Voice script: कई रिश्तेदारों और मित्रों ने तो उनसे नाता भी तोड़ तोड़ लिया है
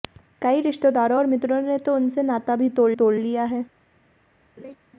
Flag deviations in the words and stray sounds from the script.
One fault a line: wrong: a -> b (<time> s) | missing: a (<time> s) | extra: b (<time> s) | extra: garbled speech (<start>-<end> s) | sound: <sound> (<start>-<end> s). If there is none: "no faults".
sound: laugh (4.6-4.7 s)